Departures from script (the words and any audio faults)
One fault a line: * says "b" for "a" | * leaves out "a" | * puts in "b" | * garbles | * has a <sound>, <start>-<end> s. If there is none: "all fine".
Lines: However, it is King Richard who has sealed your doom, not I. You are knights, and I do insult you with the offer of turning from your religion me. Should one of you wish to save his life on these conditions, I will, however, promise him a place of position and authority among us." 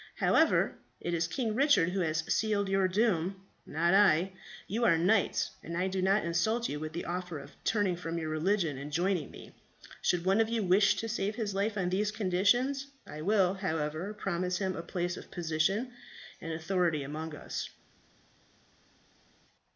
* puts in "not"
* puts in "and joining"